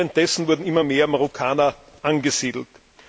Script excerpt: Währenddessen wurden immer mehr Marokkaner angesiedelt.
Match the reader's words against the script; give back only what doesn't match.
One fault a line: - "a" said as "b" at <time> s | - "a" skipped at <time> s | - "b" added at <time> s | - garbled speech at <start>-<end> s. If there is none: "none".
none